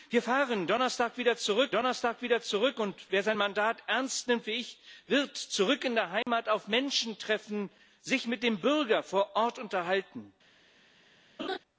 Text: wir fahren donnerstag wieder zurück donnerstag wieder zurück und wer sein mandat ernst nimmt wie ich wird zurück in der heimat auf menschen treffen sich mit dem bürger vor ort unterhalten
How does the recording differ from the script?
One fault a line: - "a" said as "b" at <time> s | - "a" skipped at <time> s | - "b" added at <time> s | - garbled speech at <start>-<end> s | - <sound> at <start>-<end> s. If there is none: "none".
- dropout at 6.2-6.3 s
- laugh at 11.4-11.6 s